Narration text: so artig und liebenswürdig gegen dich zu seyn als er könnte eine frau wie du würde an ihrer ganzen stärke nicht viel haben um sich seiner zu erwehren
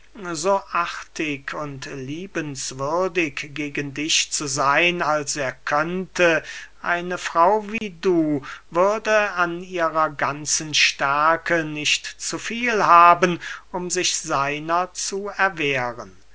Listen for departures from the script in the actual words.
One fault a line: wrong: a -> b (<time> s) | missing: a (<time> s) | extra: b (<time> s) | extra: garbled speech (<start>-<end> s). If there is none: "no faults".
extra: zu (12.0 s)